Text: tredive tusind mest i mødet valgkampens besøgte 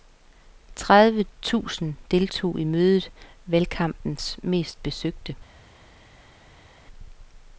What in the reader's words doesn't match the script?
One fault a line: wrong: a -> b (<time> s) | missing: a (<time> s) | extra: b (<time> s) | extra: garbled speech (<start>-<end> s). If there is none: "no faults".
wrong: mest -> deltog (2.1 s)
extra: mest (4.4 s)